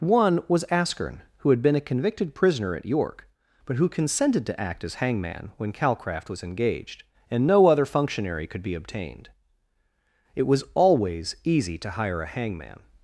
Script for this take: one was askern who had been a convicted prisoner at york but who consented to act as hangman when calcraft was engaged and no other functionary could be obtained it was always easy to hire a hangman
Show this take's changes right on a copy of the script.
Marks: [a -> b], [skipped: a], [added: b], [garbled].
one was askern who had been a convicted prisoner at york but who consented to act as hangman when calcraft was engaged and no other functionary could be obtained it was always easy to hire a hangman